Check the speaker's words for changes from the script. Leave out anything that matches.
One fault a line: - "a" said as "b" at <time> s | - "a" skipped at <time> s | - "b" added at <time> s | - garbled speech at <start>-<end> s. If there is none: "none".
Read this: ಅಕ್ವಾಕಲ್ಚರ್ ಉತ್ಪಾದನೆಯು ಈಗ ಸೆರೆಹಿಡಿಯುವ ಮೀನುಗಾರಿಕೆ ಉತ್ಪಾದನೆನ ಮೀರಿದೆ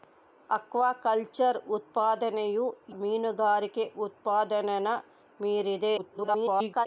- "ಈಗ ಸೆರೆಹಿಡಿಯುವ" skipped at 2.6 s
- garbled speech at 6.0-6.9 s